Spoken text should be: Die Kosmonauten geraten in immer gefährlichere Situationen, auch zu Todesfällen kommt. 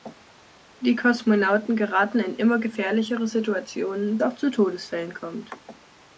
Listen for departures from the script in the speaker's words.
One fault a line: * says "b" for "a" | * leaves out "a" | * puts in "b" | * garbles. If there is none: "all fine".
all fine